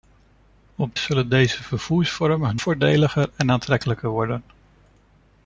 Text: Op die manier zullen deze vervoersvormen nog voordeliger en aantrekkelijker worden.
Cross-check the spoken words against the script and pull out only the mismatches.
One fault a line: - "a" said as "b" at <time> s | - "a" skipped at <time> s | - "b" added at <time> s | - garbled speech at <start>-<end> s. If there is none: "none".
- "die manier" skipped at 1.0 s
- "nog" skipped at 2.6 s